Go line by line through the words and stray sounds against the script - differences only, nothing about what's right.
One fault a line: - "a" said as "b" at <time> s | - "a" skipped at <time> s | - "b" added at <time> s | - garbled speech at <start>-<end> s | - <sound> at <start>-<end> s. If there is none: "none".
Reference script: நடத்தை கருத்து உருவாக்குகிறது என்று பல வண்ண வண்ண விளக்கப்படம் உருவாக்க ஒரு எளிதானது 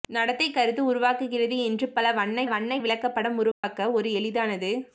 - dropout at 3.5-3.6 s